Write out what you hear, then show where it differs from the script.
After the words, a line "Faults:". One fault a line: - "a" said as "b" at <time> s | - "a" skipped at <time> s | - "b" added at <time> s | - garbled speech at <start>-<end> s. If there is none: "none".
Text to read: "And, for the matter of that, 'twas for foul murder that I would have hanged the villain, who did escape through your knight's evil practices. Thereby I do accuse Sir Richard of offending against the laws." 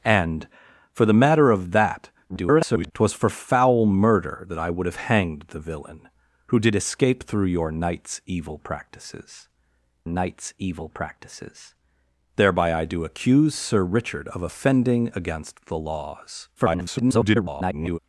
"And, for the matter of that, [garbled] 'twas for foul murder that I would have hanged the villain, who did escape through your knight's evil practices knight's evil practices. Thereby I do accuse Sir Richard of offending against the laws." [garbled]
Faults:
- garbled speech at 2.3-2.9 s
- "knight's evil practices" added at 10.1 s
- garbled speech at 16.6-18.0 s